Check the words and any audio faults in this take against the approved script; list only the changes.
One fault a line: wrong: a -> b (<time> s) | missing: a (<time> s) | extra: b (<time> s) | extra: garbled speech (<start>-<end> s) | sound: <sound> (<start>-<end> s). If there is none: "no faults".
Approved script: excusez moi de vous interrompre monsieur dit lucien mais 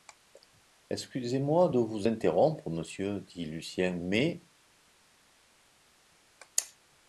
no faults